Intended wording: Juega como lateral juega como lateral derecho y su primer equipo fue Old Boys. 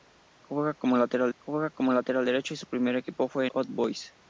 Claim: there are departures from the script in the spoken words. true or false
false